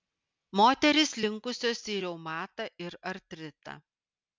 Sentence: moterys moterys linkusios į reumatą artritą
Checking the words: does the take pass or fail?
fail